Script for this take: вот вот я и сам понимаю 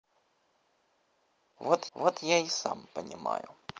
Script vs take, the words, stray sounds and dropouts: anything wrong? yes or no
no